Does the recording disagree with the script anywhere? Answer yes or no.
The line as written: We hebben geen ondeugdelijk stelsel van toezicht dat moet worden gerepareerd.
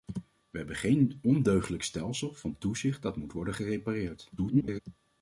yes